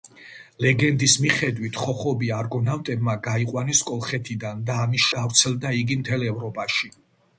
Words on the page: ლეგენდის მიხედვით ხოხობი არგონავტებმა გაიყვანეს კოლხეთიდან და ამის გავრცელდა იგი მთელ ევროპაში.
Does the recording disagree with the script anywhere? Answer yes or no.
no